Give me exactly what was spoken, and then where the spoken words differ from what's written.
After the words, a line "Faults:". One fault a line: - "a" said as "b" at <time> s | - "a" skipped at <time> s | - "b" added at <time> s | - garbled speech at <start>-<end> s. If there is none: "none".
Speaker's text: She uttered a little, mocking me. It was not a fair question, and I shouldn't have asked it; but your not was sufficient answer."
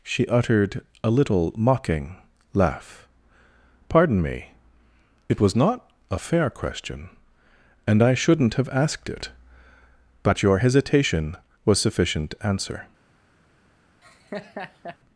She uttered a little, mocking laugh. "Pardon me. It was not a fair question, and I shouldn't have asked it; but your hesitation was sufficient answer."
Faults:
- "laugh Pardon" added at 2.5 s
- "not" said as "hesitation" at 10.6 s